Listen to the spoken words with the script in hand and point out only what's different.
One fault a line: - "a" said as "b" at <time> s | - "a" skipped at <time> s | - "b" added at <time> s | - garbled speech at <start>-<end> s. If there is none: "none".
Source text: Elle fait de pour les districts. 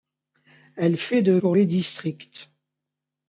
none